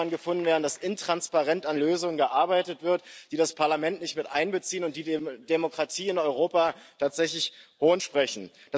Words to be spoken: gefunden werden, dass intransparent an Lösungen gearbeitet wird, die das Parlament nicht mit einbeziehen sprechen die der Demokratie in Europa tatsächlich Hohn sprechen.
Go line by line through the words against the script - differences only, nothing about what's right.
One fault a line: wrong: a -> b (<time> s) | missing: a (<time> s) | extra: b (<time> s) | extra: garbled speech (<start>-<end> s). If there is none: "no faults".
wrong: sprechen -> und (4.8 s)